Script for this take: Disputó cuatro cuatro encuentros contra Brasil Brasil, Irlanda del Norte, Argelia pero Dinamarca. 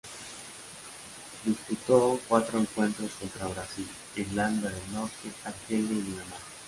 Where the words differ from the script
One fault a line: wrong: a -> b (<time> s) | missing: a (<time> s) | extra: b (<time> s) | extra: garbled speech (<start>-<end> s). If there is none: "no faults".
missing: cuatro (2.6 s)
missing: Brasil (3.9 s)
wrong: pero -> y (5.9 s)